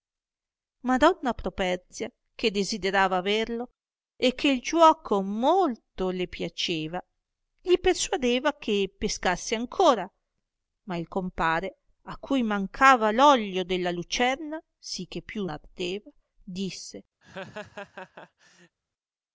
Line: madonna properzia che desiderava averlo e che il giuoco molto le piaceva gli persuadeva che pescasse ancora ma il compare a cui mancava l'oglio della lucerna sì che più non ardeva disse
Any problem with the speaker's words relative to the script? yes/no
yes